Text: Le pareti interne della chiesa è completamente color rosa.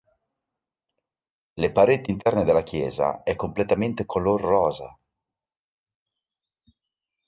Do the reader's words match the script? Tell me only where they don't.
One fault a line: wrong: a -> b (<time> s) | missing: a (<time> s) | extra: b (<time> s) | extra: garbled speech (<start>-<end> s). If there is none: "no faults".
no faults